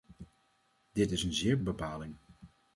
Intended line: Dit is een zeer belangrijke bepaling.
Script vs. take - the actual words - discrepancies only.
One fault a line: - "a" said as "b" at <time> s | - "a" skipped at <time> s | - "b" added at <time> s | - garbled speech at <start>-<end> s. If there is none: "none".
- "belangrijke" skipped at 1.6 s